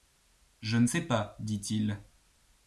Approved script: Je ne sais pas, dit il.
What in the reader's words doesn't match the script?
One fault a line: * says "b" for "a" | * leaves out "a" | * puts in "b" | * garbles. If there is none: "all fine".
all fine